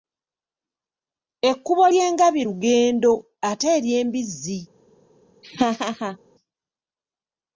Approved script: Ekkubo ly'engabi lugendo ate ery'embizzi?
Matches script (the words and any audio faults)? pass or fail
fail